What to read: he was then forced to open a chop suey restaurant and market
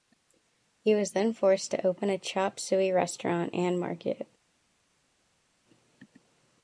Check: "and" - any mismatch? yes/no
no